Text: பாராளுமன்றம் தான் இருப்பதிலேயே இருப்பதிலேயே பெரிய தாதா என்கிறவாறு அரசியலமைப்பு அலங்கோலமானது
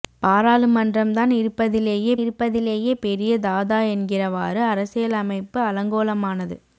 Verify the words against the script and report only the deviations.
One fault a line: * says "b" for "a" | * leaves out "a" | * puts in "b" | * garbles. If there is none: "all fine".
all fine